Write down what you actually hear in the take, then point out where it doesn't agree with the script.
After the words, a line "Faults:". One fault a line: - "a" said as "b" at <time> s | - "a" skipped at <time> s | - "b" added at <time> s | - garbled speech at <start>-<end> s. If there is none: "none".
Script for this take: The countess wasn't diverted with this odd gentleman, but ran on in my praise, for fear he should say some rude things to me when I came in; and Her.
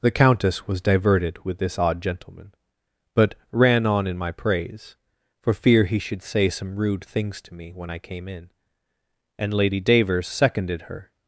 The countess was diverted with this odd gentleman, but ran on in my praise, for fear he should say some rude things to me when I came in; and Lady Davers seconded her.
Faults:
- "wasn't" said as "was" at 0.7 s
- "Lady Davers seconded" added at 9.5 s